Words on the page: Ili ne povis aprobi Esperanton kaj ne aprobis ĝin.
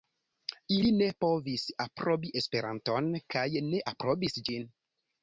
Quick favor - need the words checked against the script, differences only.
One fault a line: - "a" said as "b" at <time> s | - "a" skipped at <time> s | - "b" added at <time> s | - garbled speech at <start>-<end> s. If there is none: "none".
none